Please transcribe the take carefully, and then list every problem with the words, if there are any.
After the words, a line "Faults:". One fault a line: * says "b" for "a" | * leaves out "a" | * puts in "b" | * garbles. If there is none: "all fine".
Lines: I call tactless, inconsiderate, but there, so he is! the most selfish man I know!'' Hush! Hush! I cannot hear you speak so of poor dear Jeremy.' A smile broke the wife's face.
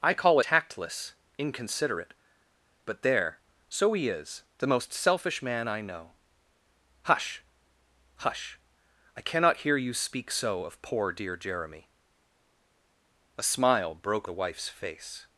I call tactless, inconsiderate, but there, so he is! the most selfish man I know!'' Hush! Hush! I cannot hear you speak so of poor dear Jeremy.' A smile broke the wife's face.
Faults:
all fine